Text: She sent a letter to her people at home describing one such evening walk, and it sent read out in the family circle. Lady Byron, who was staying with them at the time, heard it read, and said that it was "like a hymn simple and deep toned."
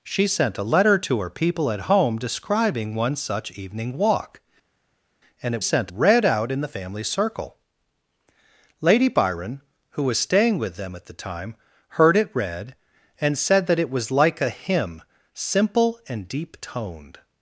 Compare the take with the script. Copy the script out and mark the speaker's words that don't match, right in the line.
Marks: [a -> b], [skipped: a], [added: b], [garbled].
She sent a letter to her people at home describing one such evening walk, and it sent read out in the family circle. Lady Byron, who was staying with them at the time, heard it read, and said that it was "like a hymn simple and deep toned."